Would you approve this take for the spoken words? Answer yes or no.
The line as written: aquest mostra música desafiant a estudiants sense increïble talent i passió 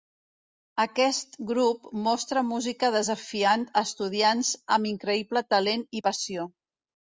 no